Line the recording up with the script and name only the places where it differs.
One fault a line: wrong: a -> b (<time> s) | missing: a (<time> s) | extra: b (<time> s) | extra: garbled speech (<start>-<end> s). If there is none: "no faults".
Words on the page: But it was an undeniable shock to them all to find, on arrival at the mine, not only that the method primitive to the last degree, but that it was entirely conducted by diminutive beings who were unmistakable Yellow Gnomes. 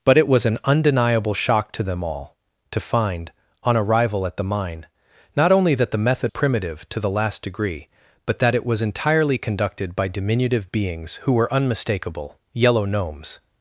no faults